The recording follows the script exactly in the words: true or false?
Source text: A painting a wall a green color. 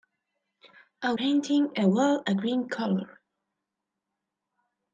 true